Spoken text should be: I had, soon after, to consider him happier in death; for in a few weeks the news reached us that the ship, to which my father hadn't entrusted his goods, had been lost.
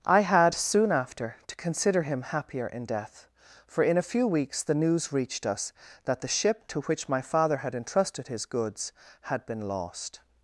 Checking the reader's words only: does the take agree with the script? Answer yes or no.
no